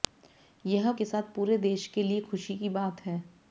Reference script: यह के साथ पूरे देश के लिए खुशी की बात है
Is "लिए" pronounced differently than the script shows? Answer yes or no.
no